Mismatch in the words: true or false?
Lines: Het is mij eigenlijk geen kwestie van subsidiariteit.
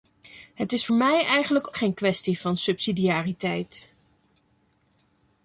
false